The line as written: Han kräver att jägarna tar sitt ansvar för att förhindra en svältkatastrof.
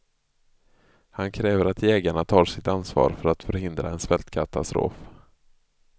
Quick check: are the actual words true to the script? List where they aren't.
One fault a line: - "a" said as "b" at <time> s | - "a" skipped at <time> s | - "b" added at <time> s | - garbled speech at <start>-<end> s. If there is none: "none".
none